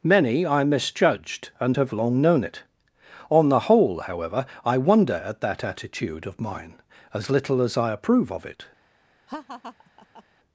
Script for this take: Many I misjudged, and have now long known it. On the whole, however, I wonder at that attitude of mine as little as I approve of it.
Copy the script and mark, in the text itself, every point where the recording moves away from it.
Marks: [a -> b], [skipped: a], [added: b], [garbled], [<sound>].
Many I misjudged, and have [skipped: now] long known it. On the whole, however, I wonder at that attitude of mine as little as I approve of it. [laugh]